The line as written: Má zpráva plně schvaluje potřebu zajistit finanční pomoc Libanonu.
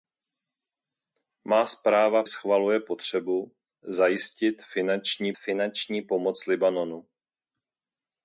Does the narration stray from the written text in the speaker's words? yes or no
yes